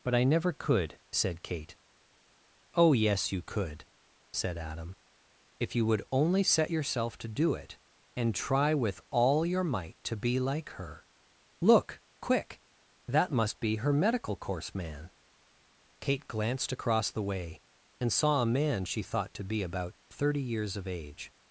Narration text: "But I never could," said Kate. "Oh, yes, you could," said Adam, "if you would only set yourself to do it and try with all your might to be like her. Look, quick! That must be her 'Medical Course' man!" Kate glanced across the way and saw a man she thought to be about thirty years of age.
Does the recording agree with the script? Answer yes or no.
yes